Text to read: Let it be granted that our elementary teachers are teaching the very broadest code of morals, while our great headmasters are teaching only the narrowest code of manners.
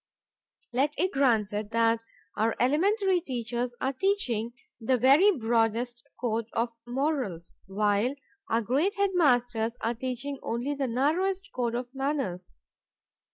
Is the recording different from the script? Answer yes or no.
yes